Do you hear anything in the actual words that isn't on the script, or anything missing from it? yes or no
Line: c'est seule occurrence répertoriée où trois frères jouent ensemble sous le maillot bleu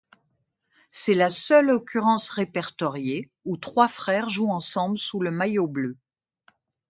yes